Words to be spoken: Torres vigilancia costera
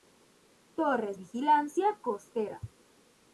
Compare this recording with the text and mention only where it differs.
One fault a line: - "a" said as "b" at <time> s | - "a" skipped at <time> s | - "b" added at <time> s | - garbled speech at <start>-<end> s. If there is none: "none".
none